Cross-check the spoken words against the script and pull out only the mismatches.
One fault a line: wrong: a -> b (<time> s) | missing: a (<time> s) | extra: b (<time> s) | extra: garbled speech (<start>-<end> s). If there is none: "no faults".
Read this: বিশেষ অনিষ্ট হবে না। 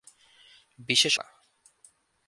missing: অনিষ্ট হবে (1.2 s)